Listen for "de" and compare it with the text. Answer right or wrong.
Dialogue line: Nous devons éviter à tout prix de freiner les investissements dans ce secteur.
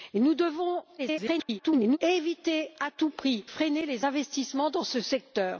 wrong